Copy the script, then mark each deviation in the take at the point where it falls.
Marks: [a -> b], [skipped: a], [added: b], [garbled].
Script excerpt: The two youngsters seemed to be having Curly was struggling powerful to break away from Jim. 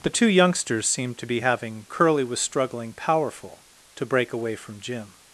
The two youngsters seemed to be having Curly was struggling powerful to break away from Jim.